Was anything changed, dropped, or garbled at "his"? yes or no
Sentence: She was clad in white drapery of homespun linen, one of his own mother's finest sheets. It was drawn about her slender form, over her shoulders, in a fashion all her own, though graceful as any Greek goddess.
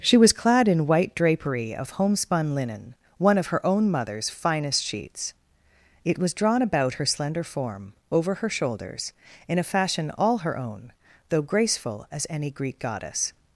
yes